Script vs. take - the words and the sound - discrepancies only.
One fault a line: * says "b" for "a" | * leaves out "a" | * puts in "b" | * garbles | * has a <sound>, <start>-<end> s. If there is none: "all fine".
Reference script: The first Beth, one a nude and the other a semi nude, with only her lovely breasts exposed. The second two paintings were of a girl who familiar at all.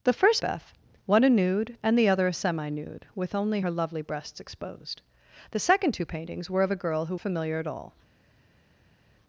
all fine